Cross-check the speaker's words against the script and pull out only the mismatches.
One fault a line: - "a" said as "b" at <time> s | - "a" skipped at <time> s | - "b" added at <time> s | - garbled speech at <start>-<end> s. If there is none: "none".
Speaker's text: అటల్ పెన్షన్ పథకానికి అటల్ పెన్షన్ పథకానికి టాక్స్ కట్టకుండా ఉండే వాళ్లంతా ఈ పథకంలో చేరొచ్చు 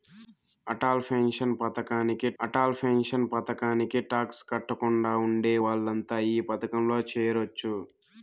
none